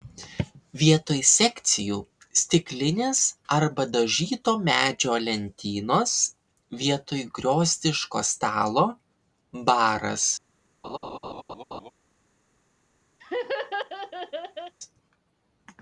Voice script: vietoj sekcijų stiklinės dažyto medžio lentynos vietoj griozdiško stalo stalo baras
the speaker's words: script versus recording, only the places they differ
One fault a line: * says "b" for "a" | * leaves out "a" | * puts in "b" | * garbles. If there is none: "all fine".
* puts in "arba"
* leaves out "stalo"